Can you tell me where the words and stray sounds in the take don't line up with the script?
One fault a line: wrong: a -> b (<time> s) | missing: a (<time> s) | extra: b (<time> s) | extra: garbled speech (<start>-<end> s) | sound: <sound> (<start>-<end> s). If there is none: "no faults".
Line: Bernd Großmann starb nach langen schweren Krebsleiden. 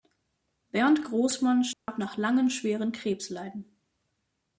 sound: dropout (1.7-1.9 s)